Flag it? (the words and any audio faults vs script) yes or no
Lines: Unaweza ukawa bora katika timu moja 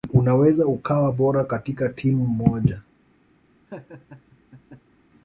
yes